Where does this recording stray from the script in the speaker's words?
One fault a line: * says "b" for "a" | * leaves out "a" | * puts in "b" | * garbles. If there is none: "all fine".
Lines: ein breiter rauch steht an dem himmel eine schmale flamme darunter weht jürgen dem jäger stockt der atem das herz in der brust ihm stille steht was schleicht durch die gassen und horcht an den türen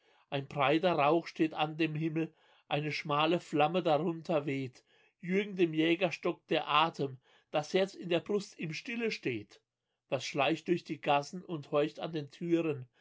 all fine